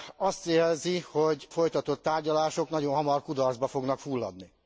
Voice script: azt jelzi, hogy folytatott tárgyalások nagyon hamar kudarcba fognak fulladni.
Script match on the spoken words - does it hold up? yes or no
yes